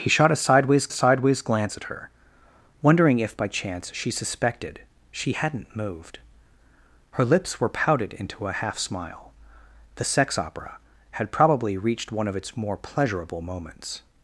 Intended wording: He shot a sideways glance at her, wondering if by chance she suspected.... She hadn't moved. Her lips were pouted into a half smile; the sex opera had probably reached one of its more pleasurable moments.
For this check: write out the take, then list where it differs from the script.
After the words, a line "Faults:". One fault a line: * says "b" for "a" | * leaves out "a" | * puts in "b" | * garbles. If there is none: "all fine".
He shot a sideways sideways glance at her, wondering if by chance she suspected.... She hadn't moved. Her lips were pouted into a half smile; the sex opera had probably reached one of its more pleasurable moments.
Faults:
* puts in "sideways"